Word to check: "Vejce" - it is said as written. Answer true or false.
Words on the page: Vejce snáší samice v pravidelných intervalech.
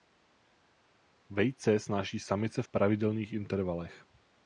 true